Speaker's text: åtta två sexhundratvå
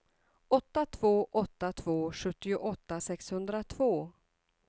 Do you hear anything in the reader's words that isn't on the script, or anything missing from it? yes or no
yes